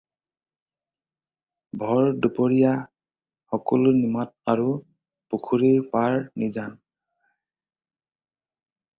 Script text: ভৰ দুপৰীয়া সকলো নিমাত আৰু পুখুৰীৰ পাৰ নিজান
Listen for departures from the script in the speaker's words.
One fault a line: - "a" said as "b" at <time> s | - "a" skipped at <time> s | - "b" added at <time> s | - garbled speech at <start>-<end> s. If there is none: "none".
none